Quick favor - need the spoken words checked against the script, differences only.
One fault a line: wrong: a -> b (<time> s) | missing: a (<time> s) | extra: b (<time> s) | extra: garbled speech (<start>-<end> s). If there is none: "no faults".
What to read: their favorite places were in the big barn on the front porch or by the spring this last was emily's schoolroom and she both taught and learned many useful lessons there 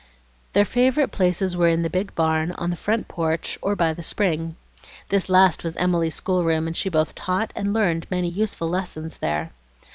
no faults